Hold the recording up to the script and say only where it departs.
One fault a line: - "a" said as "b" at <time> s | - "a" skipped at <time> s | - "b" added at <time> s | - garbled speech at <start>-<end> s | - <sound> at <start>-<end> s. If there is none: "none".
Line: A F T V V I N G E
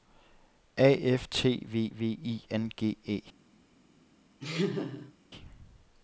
- laugh at 4.4-5.1 s